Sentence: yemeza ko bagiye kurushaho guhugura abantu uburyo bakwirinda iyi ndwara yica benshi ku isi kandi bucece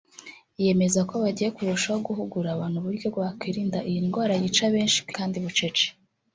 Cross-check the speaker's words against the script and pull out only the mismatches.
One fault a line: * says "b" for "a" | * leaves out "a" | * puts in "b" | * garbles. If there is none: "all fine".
* leaves out "isi"